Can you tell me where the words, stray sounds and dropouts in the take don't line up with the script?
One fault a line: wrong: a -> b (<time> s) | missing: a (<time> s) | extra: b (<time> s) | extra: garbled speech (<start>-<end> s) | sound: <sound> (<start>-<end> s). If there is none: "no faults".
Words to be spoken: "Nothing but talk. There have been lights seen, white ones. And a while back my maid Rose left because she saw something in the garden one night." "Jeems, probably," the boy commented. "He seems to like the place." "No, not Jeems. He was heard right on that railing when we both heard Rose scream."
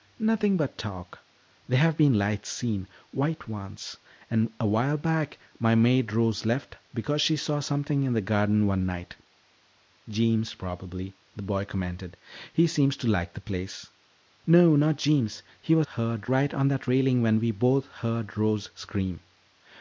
no faults